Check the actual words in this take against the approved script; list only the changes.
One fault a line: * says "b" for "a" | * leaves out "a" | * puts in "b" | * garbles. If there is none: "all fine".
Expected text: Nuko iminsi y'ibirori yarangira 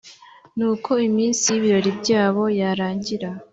* puts in "byabo"